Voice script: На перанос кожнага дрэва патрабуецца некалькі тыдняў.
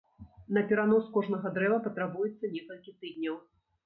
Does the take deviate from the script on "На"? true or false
false